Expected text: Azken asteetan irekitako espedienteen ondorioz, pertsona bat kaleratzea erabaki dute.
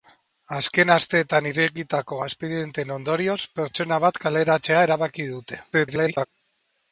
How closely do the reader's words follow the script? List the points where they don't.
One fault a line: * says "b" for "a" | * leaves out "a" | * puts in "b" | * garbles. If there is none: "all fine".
* garbles